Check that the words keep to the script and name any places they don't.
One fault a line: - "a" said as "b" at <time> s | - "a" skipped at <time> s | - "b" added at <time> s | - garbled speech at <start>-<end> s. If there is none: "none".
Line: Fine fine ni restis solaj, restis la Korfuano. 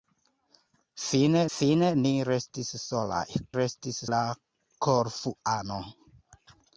none